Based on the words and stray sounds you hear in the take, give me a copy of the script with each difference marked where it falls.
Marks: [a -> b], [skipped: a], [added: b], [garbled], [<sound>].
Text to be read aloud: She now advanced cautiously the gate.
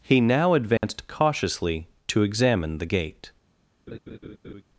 [She -> He] now advanced [dropout] cautiously [added: to examine] the gate. [laugh]